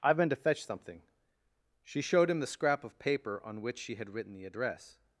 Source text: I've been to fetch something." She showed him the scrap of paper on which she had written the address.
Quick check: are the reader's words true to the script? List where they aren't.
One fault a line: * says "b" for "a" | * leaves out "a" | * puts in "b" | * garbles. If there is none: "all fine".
all fine